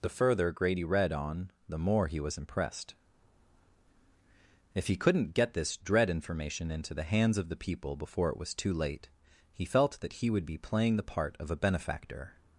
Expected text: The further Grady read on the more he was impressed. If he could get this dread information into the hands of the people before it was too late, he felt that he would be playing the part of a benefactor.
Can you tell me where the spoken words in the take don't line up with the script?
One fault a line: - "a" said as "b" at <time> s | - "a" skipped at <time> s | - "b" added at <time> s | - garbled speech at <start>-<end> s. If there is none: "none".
- "could" said as "couldn't" at 5.0 s